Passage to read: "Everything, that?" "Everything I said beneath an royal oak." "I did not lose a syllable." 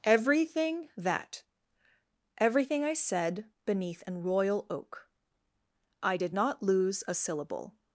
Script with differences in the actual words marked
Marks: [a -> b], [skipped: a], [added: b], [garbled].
"Everything, that?" "Everything I said beneath an royal oak." "I did not lose a syllable."